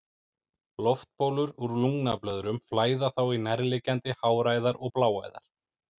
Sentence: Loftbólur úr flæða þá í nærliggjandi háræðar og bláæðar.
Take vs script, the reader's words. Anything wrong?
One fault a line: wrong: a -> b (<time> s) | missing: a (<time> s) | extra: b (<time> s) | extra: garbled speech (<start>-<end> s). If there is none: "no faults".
extra: lungnablöðrum (1.8 s)